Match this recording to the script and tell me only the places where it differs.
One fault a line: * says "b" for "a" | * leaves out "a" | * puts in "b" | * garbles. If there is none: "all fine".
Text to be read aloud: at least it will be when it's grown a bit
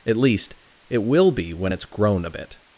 all fine